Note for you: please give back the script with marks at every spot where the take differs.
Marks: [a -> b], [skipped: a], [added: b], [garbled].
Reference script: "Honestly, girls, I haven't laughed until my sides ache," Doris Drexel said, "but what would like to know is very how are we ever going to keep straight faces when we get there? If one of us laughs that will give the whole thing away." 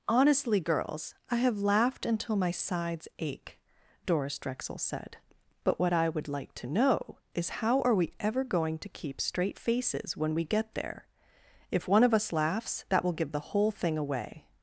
"Honestly, girls, I [haven't -> have] laughed until my sides ache," Doris Drexel said, "but what [added: I] would like to know is [skipped: very] how are we ever going to keep straight faces when we get there? If one of us laughs that will give the whole thing away."